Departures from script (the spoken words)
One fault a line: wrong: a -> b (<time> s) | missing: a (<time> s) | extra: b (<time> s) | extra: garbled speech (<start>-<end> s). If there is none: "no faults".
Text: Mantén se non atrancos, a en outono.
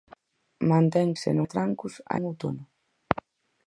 no faults